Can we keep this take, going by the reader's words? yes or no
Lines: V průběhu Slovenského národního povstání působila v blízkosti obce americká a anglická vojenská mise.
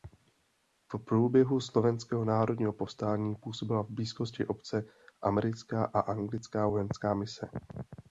yes